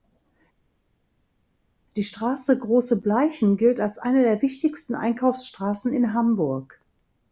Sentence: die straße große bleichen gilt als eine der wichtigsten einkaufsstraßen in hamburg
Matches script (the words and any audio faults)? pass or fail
pass